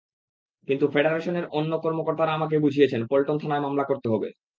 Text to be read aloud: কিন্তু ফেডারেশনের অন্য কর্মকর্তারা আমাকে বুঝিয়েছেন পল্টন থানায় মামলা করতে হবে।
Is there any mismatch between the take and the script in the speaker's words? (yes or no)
no